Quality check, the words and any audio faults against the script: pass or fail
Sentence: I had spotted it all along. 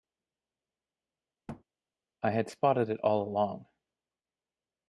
fail